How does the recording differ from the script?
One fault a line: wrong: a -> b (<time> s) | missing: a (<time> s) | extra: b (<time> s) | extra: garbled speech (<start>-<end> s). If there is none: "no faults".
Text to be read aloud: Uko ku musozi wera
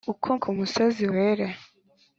no faults